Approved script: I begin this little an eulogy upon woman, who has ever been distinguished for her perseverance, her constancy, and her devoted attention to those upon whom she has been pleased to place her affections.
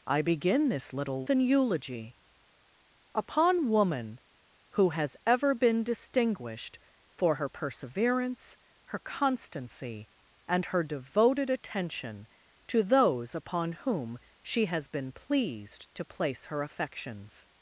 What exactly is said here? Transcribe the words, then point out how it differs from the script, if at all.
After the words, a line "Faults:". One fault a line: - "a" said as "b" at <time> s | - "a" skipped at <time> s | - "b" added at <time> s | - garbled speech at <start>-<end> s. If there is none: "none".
I begin this little an eulogy upon woman, who has ever been distinguished for her perseverance, her constancy, and her devoted attention to those upon whom she has been pleased to place her affections.
Faults:
none